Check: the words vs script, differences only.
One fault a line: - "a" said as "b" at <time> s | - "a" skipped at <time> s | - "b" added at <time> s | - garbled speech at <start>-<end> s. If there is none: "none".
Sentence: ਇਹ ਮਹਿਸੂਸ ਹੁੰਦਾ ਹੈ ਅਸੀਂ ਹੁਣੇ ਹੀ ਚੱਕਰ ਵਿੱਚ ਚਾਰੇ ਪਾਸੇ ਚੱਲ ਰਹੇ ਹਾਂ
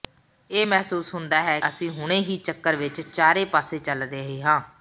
none